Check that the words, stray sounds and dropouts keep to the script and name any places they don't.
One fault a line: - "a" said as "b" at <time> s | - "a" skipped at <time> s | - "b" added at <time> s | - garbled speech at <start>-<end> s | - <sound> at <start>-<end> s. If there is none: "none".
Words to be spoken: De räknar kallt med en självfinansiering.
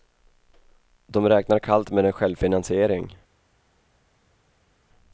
none